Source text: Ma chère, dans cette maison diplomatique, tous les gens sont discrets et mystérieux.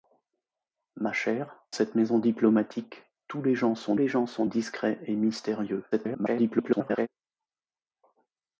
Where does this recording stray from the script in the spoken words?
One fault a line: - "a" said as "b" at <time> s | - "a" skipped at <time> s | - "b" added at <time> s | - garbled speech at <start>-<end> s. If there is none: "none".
- "dans" skipped at 1.7 s
- "les gens sont" added at 3.9 s
- garbled speech at 5.9-7.1 s